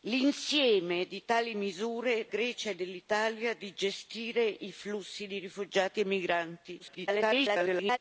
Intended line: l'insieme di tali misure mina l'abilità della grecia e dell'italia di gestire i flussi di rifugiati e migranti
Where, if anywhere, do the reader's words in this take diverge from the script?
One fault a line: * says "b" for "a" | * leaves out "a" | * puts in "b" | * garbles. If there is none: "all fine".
* leaves out "mina l'abilità della"
* garbles